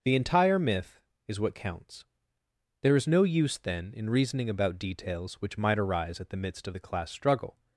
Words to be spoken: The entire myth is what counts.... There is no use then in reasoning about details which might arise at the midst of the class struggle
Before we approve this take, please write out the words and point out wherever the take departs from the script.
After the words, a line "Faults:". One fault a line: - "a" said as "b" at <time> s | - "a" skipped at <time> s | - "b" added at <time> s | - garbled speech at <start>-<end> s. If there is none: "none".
The entire myth is what counts.... There is no use then in reasoning about details which might arise at the midst of the class struggle
Faults:
none